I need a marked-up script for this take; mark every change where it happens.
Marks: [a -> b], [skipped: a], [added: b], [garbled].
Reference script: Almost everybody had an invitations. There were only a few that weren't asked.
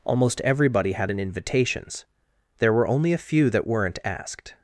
Almost everybody had an invitations. There were only a few that weren't asked.